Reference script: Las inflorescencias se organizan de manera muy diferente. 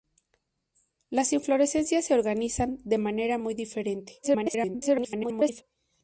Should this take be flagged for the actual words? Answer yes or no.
yes